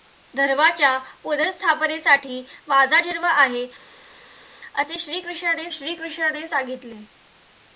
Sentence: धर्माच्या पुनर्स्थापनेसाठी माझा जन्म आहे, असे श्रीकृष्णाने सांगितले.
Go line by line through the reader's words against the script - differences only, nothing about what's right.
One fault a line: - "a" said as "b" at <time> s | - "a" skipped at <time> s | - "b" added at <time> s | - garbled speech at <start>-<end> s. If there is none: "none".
- "श्रीकृष्णाने" added at 5.7 s